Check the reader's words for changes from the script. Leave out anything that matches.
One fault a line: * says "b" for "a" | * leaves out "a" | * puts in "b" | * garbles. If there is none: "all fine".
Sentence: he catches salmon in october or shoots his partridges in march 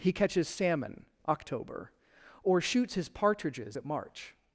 * leaves out "in"
* says "at" for "in"